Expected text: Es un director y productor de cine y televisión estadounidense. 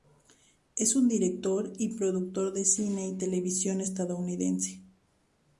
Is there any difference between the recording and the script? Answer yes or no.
no